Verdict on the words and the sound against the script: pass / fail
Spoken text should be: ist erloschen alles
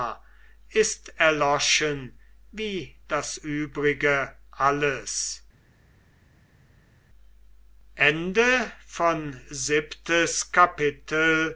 fail